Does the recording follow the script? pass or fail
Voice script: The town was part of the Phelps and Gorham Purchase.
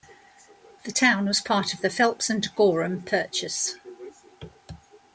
pass